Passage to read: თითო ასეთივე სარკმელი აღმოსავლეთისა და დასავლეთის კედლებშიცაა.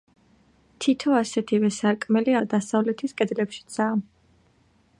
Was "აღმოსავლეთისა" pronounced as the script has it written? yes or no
no